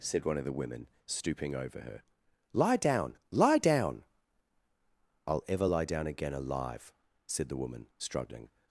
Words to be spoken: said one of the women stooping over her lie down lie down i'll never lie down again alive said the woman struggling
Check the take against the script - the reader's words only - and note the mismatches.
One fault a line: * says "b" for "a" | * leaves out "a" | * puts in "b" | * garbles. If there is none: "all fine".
* says "ever" for "never"